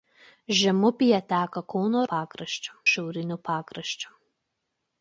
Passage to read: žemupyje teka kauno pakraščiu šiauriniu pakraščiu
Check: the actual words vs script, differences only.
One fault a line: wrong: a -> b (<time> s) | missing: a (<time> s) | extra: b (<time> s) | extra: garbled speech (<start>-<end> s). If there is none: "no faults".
no faults